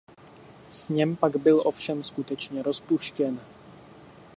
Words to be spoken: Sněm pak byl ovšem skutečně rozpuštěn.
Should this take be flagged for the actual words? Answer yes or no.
no